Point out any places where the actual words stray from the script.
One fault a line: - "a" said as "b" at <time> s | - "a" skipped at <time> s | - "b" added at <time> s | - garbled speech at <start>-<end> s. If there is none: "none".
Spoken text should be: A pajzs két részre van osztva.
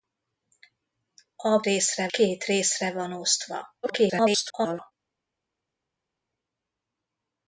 - "pajzs" said as "részre" at 1.6 s
- garbled speech at 3.8-4.9 s